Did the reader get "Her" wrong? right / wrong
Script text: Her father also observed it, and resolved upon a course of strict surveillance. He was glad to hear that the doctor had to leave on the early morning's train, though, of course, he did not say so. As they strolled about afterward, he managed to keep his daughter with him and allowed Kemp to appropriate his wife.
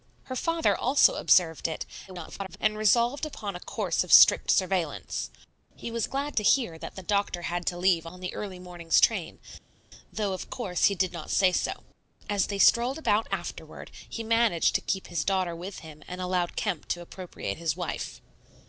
right